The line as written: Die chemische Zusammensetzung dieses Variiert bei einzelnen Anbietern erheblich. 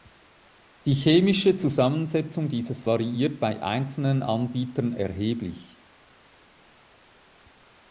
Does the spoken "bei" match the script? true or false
true